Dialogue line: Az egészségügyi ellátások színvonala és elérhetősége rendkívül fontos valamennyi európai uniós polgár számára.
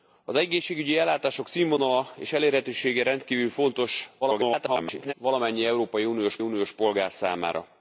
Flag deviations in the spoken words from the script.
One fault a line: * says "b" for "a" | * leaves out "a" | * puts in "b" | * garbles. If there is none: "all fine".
* garbles
* puts in "uniós"